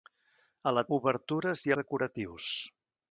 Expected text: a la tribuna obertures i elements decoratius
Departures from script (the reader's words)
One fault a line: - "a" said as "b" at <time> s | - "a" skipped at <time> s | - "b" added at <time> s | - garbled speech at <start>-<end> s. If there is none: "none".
- "tribuna" skipped at 0.8 s
- "elements" skipped at 1.7 s